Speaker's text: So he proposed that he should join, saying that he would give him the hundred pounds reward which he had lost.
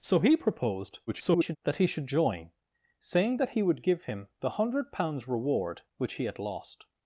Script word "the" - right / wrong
right